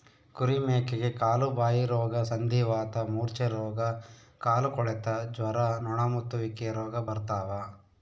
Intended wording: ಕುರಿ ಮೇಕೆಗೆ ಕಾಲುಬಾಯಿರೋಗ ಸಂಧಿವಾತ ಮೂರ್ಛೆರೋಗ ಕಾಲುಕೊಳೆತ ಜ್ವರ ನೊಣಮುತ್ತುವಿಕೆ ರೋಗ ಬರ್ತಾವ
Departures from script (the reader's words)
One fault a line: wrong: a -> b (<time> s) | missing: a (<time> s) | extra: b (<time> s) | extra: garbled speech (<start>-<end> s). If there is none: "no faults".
no faults